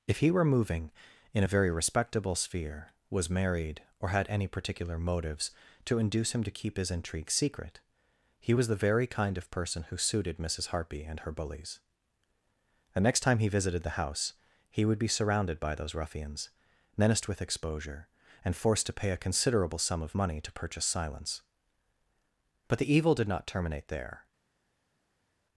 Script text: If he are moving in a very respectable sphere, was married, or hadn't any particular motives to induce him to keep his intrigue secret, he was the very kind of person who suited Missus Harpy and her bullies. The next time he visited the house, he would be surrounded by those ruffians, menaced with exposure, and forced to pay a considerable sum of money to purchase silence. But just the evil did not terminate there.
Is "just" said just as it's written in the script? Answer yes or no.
no